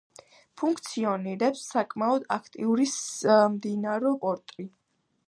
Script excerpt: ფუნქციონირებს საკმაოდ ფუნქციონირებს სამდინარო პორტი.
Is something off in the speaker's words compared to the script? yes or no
yes